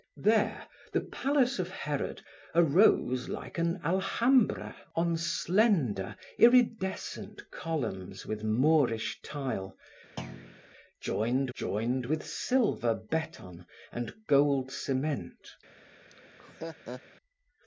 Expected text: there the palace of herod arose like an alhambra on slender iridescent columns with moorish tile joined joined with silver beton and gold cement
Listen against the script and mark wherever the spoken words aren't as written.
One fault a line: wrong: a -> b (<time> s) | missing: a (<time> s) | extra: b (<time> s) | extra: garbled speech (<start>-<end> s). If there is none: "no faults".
no faults